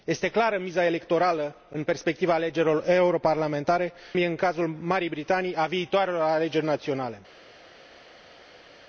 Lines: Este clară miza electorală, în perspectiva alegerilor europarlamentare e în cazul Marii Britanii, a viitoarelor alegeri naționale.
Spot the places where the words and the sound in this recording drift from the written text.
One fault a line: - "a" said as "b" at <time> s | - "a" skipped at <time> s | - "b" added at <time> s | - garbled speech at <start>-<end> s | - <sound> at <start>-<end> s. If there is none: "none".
none